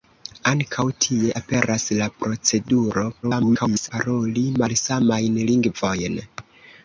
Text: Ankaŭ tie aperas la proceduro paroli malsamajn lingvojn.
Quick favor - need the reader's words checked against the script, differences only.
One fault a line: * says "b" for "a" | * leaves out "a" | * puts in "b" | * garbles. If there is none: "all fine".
* garbles